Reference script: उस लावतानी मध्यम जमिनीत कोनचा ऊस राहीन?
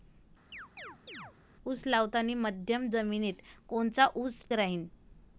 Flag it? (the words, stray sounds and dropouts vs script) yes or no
yes